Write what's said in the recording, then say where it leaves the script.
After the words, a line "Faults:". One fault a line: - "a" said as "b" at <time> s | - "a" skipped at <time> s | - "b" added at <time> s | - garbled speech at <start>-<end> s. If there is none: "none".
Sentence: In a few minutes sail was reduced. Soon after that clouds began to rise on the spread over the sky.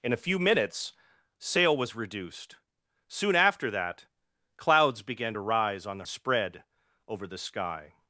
In a few minutes sail was reduced. Soon after that clouds began to rise on the spread over the sky.
Faults:
none